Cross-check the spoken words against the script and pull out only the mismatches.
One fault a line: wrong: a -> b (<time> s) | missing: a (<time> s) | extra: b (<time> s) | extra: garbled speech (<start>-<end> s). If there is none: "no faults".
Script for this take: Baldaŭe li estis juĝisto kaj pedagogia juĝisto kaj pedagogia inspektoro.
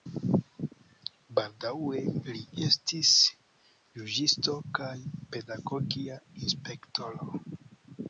missing: juĝisto kaj pedagogia (6.2 s)